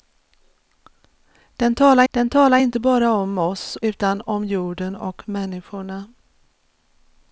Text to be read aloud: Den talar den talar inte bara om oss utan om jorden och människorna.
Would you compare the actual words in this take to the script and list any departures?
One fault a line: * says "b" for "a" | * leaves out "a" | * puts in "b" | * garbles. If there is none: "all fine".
all fine